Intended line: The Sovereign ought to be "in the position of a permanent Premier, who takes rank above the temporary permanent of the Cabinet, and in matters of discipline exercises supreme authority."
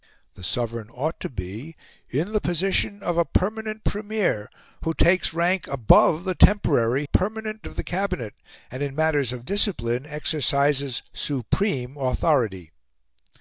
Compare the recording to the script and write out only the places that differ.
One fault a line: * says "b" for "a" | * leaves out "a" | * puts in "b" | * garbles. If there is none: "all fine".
all fine